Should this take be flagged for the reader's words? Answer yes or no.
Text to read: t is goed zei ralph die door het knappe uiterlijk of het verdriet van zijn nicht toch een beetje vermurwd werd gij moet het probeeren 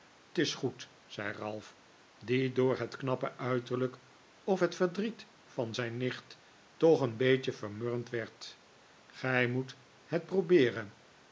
no